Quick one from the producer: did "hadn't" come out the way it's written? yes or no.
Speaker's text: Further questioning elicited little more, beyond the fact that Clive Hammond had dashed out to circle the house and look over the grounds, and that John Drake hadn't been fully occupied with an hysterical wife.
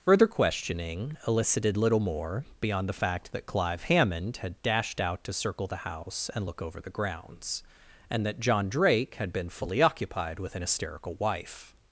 no